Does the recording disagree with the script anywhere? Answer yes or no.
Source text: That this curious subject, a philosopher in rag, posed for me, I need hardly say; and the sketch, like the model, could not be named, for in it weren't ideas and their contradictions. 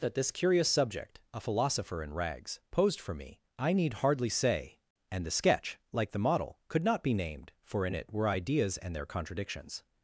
yes